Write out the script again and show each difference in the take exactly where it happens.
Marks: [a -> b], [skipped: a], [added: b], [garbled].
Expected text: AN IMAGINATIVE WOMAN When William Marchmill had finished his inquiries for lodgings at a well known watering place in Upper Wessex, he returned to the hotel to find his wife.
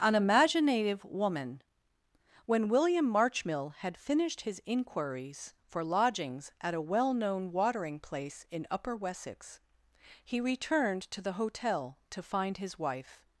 AN IMAGINATIVE WOMAN When William Marchmill had finished his inquiries for lodgings at a well known watering place in Upper Wessex, he returned to the hotel to find his wife.